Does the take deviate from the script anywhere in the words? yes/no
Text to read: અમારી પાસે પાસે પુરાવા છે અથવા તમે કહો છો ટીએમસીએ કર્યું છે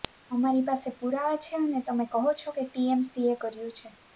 yes